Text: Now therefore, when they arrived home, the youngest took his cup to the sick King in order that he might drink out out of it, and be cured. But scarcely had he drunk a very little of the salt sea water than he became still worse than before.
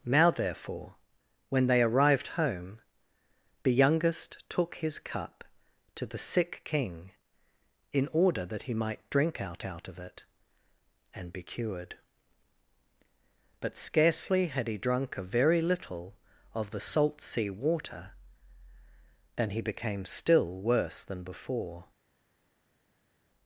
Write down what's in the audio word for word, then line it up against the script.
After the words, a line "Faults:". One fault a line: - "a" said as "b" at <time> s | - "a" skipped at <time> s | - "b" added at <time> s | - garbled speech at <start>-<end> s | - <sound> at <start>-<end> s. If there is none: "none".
Now therefore, when they arrived home, the youngest took his cup to the sick King in order that he might drink out out of it, and be cured. But scarcely had he drunk a very little of the salt sea water than he became still worse than before.
Faults:
none